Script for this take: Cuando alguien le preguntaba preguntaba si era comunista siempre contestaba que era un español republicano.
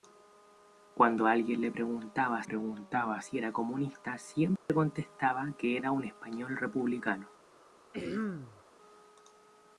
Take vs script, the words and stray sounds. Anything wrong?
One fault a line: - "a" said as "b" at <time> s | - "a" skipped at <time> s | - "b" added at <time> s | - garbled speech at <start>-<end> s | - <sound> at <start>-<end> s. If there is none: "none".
- dropout at 4.6-4.7 s
- throat clearing at 7.9-8.6 s